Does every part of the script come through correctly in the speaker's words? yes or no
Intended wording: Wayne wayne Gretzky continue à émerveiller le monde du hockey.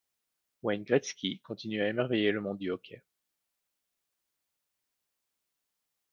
no